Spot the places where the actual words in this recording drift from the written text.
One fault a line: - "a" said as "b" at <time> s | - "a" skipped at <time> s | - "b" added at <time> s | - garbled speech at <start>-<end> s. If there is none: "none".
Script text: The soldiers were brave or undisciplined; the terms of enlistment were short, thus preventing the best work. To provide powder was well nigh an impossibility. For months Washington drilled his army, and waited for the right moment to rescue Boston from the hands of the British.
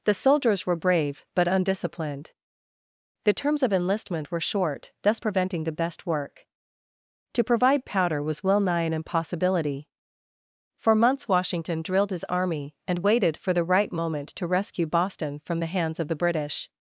- "or" said as "but" at 1.4 s